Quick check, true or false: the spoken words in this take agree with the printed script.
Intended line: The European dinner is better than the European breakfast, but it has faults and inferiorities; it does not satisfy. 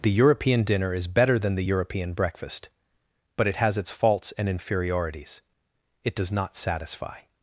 false